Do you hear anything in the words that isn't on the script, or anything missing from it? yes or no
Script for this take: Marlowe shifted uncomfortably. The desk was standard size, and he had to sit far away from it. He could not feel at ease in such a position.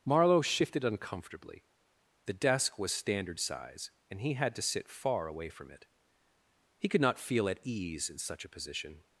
no